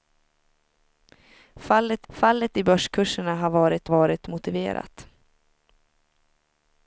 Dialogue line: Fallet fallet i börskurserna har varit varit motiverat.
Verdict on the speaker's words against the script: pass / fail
pass